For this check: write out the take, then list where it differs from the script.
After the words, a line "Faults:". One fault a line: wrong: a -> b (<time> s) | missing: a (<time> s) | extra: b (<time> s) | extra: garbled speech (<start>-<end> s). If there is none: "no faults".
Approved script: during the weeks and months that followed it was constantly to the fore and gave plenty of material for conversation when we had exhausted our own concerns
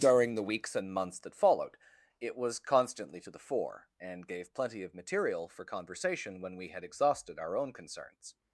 during the weeks and months that followed it was constantly to the fore and gave plenty of material for conversation when we had exhausted our own concerns
Faults:
no faults